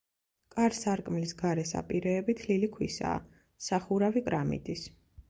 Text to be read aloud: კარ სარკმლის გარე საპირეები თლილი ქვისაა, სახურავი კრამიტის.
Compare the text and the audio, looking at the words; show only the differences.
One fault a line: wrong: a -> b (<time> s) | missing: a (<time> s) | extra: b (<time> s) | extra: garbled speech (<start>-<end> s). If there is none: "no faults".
no faults